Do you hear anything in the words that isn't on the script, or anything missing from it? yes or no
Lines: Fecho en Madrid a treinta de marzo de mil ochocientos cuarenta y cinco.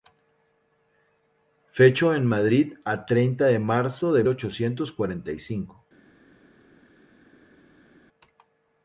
yes